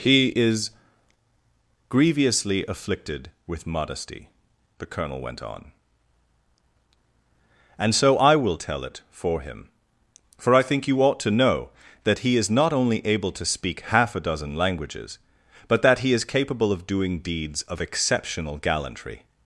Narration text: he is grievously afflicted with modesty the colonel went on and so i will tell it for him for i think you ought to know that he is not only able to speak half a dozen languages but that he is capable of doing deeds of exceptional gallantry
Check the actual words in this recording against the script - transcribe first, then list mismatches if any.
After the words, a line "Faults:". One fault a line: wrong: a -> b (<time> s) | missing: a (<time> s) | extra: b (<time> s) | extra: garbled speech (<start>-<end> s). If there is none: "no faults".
he is grievously afflicted with modesty the colonel went on and so i will tell it for him for i think you ought to know that he is not only able to speak half a dozen languages but that he is capable of doing deeds of exceptional gallantry
Faults:
no faults